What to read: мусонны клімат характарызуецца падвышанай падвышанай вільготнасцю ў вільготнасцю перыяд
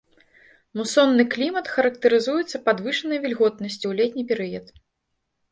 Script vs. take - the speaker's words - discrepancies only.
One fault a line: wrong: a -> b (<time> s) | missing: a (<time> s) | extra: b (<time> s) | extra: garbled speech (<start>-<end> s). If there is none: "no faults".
missing: падвышанай (3.2 s)
wrong: вільготнасцю -> летні (4.0 s)